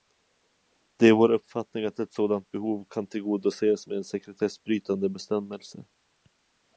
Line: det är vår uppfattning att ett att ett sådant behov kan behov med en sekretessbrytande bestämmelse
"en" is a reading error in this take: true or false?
false